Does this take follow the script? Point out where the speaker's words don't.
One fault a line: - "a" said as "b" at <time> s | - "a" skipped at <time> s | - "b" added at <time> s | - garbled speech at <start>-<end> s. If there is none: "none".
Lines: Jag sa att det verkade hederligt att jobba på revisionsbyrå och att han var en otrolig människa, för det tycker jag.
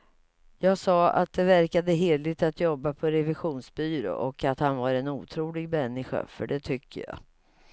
none